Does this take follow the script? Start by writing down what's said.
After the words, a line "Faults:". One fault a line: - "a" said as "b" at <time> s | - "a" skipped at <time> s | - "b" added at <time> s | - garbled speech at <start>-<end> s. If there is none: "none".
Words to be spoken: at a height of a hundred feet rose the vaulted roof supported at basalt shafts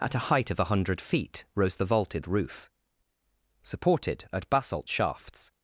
at a height of a hundred feet rose the vaulted roof supported at basalt shafts
Faults:
none